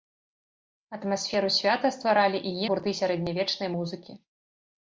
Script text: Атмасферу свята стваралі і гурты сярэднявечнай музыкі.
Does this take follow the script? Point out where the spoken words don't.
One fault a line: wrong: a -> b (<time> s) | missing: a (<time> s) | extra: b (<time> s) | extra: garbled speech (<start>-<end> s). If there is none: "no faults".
no faults